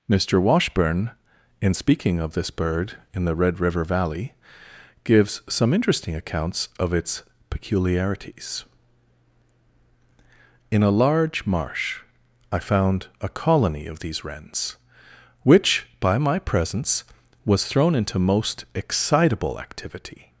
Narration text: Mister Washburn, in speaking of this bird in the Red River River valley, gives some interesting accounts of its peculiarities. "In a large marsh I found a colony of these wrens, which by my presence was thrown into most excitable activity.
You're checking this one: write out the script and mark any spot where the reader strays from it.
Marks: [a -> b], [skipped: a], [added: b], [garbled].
Mister Washburn, in speaking of this bird in the Red River [skipped: River] valley, gives some interesting accounts of its peculiarities. "In a large marsh I found a colony of these wrens, which by my presence was thrown into most excitable activity.